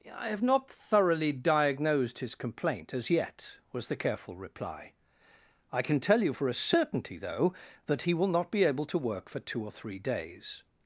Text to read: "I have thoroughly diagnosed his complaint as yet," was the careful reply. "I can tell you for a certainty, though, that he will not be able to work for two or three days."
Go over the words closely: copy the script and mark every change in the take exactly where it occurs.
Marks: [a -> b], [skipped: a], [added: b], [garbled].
"I have [added: not] thoroughly diagnosed his complaint as yet," was the careful reply. "I can tell you for a certainty, though, that he will not be able to work for two or three days."